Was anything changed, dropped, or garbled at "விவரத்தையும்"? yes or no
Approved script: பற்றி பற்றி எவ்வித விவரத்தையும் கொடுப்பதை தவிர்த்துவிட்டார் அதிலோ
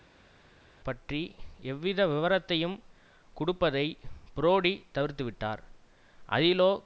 no